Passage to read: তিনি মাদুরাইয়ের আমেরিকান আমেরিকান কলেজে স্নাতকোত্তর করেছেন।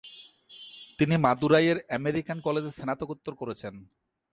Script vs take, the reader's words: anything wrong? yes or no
yes